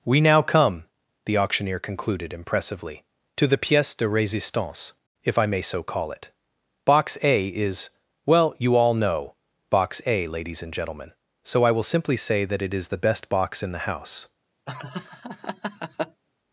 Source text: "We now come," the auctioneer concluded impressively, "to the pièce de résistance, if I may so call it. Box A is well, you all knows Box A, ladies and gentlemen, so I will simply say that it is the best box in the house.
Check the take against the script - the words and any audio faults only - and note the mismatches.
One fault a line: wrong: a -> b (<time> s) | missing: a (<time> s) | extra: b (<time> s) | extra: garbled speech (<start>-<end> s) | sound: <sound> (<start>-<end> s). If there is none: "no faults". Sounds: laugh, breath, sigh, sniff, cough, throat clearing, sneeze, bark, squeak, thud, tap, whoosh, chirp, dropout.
wrong: knows -> know (8.9 s)
sound: laugh (14.7-16.2 s)